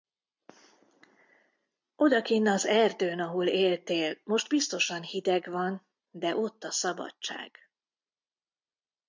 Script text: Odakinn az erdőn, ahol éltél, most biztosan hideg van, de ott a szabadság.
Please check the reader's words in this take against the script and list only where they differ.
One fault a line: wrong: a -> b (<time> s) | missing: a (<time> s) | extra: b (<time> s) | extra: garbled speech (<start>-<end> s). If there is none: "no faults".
no faults